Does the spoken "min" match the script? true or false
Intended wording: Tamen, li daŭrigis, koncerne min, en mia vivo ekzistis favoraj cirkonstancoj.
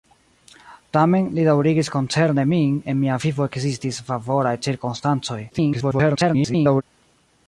true